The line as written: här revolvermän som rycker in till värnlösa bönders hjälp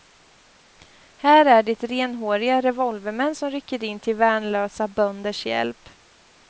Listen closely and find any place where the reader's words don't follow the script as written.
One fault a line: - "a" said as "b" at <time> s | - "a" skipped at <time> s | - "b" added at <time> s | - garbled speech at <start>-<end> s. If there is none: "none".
- "är det renhåriga" added at 1.4 s